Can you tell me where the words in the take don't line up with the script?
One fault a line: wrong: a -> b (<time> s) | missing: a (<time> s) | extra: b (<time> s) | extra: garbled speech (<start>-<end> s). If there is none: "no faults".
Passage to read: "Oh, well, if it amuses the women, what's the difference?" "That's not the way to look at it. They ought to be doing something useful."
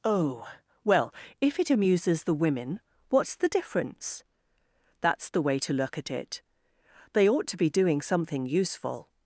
missing: not (5.3 s)